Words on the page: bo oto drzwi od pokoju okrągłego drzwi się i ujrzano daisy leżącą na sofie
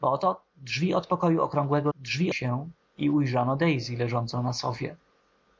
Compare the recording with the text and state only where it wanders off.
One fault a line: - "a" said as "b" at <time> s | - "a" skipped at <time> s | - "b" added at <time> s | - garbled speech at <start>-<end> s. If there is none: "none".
none